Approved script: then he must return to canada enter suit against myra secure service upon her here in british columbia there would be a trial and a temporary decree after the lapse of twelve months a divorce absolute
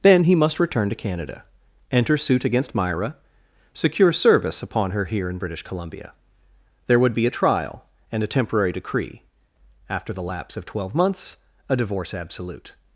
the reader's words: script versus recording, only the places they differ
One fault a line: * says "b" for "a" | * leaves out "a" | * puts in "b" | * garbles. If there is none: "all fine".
all fine